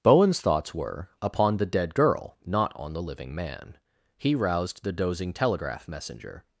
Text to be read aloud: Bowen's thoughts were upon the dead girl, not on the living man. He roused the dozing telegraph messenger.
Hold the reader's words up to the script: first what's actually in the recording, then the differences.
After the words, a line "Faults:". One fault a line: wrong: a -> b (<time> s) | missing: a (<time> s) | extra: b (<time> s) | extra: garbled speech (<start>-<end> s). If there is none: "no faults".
Bowen's thoughts were upon the dead girl, not on the living man. He roused the dozing telegraph messenger.
Faults:
no faults